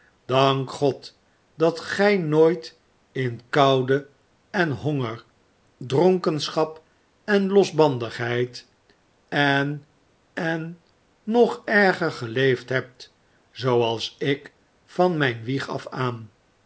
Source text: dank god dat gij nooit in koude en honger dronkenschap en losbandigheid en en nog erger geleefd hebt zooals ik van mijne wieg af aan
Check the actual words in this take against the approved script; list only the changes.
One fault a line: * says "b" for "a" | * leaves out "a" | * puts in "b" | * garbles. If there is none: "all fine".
all fine